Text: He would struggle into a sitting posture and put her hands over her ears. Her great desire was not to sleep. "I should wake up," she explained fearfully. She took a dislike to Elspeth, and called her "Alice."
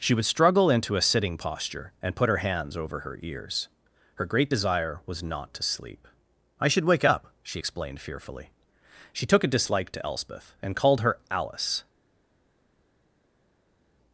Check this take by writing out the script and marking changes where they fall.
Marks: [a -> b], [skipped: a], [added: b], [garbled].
[He -> She] would struggle into a sitting posture and put her hands over her ears. Her great desire was not to sleep. "I should wake up," she explained fearfully. She took a dislike to Elspeth, and called her "Alice."